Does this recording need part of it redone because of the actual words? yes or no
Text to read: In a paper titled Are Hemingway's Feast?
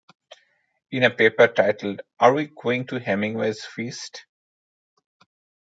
yes